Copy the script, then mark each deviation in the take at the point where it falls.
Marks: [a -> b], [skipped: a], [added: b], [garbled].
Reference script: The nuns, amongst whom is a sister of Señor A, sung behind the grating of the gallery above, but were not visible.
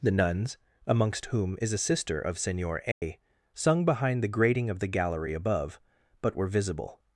The nuns, amongst whom is a sister of Señor A, sung behind the grating of the gallery above, but were [skipped: not] visible.